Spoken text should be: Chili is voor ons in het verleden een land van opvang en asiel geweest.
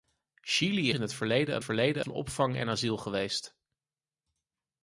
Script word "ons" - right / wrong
wrong